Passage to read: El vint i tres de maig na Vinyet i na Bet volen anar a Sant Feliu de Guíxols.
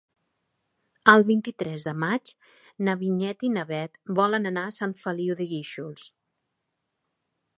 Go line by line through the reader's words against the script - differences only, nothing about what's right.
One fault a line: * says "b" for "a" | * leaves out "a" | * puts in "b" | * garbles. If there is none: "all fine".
all fine